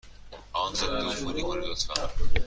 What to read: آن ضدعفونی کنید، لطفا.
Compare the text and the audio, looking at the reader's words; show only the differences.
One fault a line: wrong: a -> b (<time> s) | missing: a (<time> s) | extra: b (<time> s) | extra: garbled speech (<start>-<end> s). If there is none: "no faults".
no faults